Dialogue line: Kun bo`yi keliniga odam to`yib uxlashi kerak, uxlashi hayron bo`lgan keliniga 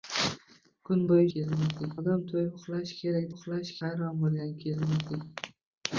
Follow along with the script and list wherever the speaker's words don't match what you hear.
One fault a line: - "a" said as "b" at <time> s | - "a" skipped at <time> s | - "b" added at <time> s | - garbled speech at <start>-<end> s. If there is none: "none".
none